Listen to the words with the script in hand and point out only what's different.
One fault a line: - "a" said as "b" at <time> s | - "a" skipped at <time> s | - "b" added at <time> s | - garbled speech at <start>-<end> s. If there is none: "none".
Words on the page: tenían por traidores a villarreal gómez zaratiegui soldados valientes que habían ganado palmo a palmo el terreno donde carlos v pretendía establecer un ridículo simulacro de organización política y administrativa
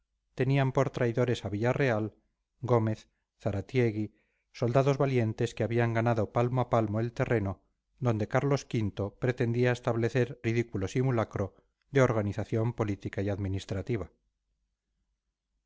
- "un" skipped at 10.3 s